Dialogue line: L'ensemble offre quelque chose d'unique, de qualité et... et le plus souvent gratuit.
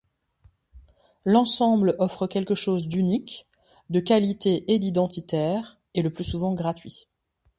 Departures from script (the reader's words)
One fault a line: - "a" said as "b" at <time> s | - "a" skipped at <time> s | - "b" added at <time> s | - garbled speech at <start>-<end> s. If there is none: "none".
- "d'identitaire" added at 4.8 s